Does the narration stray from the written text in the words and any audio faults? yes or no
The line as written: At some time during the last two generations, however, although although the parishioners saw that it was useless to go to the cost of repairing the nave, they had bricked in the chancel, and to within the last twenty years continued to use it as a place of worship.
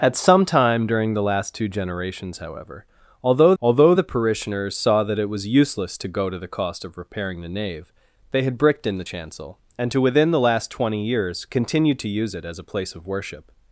no